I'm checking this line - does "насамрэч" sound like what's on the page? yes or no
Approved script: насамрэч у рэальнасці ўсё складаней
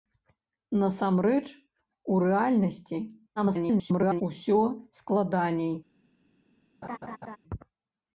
yes